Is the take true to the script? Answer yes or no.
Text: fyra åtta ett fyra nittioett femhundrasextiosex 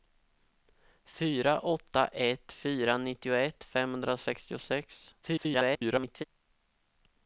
no